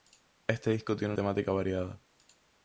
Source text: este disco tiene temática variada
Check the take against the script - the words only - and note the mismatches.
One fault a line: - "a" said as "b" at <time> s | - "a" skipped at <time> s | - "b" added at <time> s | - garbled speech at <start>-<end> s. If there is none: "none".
none